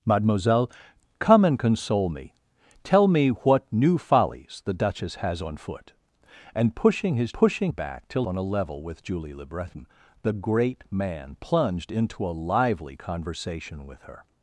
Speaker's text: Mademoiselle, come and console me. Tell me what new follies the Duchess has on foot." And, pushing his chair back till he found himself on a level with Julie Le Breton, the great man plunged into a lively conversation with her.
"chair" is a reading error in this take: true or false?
true